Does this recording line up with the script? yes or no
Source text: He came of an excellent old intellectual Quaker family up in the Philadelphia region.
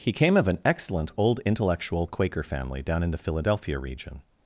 no